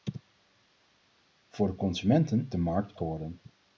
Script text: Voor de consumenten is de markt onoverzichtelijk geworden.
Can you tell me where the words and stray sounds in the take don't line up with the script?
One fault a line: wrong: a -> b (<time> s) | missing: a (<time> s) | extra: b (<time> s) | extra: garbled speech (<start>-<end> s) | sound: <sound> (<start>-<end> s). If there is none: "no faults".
missing: is (2.5 s)
missing: onoverzichtelijk (3.0 s)